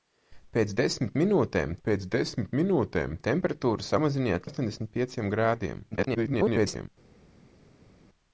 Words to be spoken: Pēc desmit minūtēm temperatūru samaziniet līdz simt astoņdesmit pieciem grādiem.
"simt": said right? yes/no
no